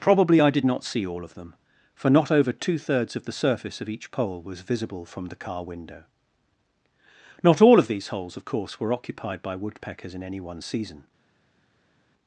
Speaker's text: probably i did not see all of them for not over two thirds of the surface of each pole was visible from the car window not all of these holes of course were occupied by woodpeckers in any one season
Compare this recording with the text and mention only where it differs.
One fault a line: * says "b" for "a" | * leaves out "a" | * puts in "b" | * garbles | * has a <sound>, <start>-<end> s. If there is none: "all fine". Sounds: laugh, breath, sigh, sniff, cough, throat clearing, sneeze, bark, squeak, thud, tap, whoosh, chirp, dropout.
all fine